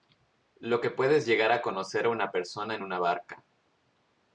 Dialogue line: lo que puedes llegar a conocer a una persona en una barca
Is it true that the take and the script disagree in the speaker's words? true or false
false